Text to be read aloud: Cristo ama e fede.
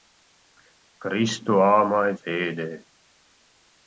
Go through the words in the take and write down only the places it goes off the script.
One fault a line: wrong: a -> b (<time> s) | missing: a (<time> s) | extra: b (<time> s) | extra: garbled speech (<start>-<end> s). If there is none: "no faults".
no faults